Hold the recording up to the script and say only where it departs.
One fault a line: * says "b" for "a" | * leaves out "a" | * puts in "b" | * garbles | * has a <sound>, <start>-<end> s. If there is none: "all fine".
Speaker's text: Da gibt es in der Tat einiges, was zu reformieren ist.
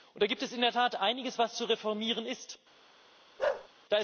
* has a bark, 3.4-3.7 s